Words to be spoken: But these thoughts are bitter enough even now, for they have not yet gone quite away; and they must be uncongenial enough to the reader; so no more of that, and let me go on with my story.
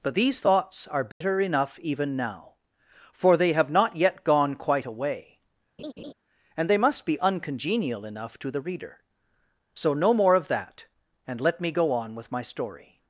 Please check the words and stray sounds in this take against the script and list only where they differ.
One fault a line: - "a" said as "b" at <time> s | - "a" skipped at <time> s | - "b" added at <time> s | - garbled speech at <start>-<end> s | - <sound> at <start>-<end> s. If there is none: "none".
- dropout at 1.1-1.2 s
- laugh at 5.8-6.1 s